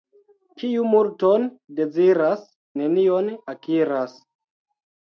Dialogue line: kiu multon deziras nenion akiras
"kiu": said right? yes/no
yes